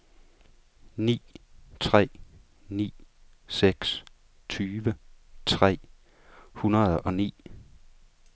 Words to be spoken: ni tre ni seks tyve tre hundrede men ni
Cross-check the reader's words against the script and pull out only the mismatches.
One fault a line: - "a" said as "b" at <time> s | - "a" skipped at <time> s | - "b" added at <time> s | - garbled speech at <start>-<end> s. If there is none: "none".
- "men" said as "og" at 7.0 s